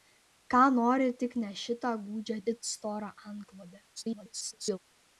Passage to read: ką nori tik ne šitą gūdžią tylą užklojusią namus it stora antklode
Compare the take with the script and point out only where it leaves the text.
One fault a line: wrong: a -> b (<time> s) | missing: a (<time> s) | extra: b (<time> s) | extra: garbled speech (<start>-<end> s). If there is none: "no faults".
missing: tylą užklojusią namus (2.4 s)
extra: garbled speech (4.0-4.8 s)